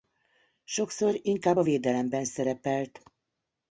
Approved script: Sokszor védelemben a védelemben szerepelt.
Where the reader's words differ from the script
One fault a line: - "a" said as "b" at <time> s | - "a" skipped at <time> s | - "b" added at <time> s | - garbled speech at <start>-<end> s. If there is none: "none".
- "védelemben" said as "inkább" at 1.2 s